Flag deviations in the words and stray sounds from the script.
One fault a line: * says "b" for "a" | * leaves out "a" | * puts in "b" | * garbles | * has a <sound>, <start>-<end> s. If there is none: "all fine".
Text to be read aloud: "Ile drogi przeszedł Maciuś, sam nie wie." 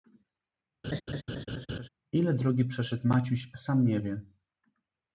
* has a laugh, 0.8-1.9 s